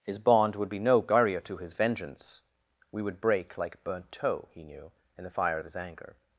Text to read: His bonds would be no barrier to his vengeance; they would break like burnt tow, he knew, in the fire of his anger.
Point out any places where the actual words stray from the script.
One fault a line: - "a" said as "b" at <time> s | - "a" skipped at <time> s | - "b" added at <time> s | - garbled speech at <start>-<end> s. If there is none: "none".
- "bonds" said as "bond" at 0.2 s
- "they" said as "we" at 2.9 s